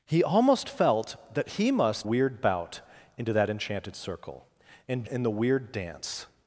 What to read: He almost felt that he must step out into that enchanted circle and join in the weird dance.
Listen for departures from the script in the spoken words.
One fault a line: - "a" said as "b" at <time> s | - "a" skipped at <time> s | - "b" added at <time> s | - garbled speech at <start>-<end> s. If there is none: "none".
- "step" said as "weird" at 2.0 s
- "join" skipped at 5.0 s